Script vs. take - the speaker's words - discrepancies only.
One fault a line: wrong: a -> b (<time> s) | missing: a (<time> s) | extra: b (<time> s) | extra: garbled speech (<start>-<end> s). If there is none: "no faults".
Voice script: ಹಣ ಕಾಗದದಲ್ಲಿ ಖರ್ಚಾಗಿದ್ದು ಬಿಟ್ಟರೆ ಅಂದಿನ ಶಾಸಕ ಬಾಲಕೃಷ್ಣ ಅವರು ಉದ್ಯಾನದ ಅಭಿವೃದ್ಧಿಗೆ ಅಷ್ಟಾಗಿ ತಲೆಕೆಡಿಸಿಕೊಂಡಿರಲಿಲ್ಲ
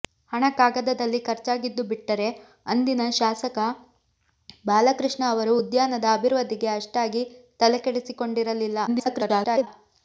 extra: garbled speech (8.9-9.7 s)